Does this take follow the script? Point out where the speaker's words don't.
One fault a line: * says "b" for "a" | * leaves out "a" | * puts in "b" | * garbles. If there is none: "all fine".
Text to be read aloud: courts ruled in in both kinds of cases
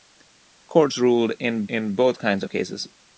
all fine